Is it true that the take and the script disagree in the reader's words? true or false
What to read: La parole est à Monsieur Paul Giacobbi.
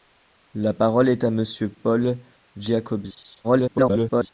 true